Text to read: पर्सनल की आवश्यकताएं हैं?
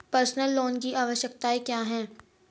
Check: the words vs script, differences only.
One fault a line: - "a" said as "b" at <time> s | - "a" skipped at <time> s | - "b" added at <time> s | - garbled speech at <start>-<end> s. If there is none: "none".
- "लोन" added at 0.6 s
- "क्या" added at 1.6 s